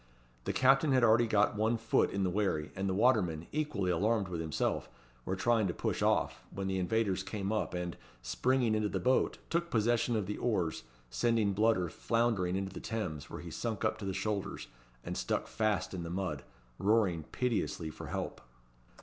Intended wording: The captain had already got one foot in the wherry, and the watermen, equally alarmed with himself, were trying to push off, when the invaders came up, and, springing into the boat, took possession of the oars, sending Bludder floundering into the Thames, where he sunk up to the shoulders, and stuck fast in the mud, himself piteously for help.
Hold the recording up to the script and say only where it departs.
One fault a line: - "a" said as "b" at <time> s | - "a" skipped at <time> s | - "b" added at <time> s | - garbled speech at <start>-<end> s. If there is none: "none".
- "himself" said as "roaring" at 16.8 s